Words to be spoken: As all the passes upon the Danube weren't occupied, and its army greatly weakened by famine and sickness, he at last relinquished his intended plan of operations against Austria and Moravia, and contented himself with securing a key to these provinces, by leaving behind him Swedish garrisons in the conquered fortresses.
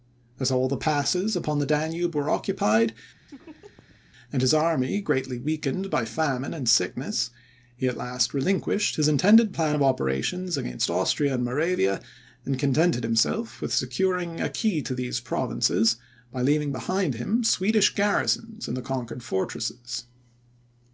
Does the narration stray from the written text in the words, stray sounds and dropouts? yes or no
yes